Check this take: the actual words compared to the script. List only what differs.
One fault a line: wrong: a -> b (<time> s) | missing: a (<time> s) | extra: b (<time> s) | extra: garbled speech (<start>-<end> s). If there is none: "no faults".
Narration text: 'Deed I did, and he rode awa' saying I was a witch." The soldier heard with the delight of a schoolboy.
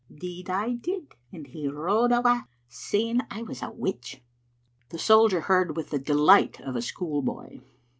no faults